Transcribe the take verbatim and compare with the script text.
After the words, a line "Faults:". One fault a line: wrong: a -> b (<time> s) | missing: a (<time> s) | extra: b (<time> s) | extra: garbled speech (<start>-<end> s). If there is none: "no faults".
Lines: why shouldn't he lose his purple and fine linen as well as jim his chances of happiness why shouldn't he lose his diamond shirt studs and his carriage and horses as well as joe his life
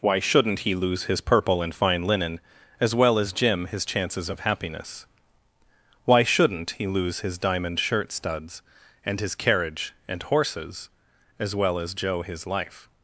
why shouldn't he lose his purple and fine linen as well as jim his chances of happiness why shouldn't he lose his diamond shirt studs and his carriage and horses as well as joe his life
Faults:
no faults